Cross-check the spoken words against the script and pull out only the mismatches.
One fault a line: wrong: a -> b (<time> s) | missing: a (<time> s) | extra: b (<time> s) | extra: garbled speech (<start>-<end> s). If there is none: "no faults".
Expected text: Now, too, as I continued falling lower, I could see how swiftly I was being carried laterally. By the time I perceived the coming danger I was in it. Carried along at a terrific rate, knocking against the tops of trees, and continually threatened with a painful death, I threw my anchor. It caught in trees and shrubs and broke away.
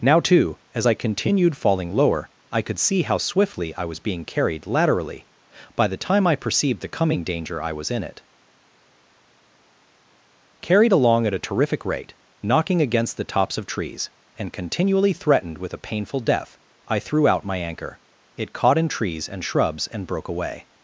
extra: out (17.3 s)